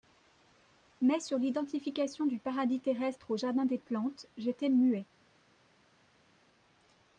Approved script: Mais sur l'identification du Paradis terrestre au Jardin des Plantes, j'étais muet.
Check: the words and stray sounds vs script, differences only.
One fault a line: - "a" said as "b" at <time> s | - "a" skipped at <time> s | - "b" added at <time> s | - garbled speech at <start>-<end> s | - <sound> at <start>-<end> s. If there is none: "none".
none